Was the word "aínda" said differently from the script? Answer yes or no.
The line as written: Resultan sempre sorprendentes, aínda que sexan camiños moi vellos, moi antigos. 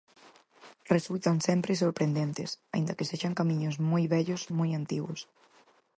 no